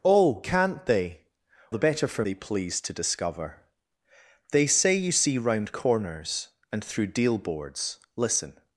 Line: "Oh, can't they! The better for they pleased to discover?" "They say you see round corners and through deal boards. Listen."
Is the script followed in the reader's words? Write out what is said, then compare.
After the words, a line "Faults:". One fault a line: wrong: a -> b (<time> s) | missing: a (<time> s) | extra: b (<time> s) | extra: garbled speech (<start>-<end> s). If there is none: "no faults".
"Oh, can't they! The better for they pleased to discover?" "They say you see round corners and through deal boards. Listen."
Faults:
no faults